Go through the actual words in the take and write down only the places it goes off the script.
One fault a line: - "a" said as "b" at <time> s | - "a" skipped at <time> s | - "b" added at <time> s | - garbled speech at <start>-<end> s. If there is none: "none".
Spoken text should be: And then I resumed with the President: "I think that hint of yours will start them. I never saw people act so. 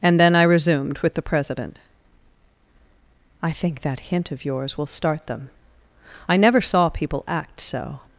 none